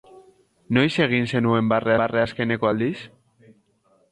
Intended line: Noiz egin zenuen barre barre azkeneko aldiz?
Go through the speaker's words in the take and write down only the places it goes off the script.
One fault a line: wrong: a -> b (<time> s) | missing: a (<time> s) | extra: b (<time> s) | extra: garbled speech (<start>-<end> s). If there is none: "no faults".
no faults